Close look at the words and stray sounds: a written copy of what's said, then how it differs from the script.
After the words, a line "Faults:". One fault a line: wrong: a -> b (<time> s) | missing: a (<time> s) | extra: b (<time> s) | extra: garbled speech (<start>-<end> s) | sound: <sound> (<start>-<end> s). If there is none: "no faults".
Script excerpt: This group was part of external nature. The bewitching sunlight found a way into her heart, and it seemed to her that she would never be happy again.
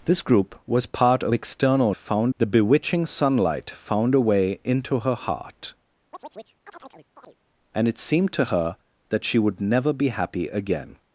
This group was part of external found. The bewitching sunlight found a way into her heart, and it seemed to her that she would never be happy again.
Faults:
wrong: nature -> found (1.9 s)
sound: chirp (6.1-7.4 s)